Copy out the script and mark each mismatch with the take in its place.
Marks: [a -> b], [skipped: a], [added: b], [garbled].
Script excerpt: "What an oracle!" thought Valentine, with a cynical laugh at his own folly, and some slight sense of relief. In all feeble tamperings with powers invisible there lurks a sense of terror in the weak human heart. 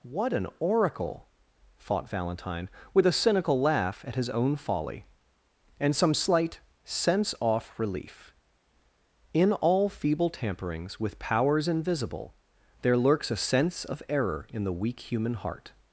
"What an oracle!" thought Valentine, with a cynical laugh at his own folly, and some slight sense [of -> off] relief. In all feeble tamperings with powers invisible there lurks a sense of [terror -> error] in the weak human heart.